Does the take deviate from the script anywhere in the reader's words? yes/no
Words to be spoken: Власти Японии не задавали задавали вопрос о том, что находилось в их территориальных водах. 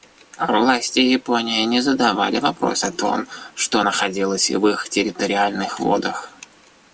yes